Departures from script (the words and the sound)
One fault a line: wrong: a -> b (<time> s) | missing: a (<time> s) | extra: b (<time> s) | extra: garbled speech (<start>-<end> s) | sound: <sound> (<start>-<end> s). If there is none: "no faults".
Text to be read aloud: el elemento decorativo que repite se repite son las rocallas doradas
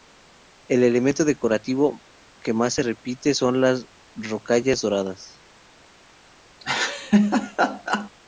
wrong: repite -> más (2.5 s)
sound: laugh (6.6-8.1 s)